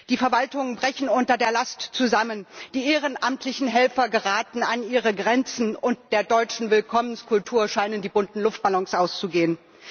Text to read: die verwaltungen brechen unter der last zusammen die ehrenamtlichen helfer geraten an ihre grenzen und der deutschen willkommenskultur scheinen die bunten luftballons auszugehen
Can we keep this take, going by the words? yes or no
yes